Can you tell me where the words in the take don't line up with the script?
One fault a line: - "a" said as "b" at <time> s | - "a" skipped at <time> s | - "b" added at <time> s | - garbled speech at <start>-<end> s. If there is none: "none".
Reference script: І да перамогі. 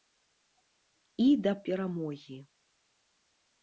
none